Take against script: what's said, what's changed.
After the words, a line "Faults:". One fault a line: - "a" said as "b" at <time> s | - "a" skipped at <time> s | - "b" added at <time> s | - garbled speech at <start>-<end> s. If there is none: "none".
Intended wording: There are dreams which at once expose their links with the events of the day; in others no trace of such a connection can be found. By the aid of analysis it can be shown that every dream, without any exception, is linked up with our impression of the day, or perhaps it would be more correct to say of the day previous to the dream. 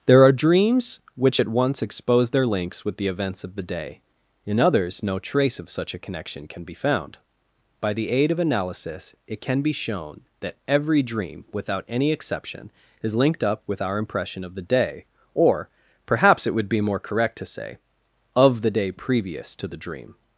There are dreams which at once expose their links with the events of the day; in others no trace of such a connection can be found. By the aid of analysis it can be shown that every dream, without any exception, is linked up with our impression of the day, or perhaps it would be more correct to say of the day previous to the dream.
Faults:
none